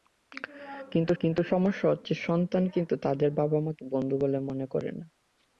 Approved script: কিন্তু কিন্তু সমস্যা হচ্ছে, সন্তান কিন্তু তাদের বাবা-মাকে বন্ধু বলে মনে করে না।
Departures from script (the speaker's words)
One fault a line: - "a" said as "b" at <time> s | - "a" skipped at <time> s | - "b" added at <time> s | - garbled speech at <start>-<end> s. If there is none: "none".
none